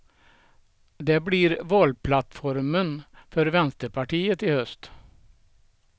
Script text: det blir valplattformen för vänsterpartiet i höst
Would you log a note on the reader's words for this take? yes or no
no